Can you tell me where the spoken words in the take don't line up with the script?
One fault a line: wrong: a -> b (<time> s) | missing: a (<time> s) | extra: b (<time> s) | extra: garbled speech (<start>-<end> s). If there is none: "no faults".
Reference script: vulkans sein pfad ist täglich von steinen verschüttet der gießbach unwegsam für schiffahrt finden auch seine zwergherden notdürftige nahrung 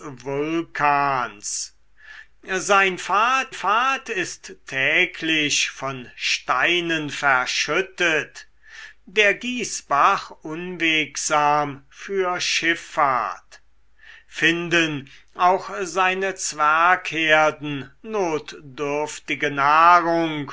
extra: pfad (3.5 s)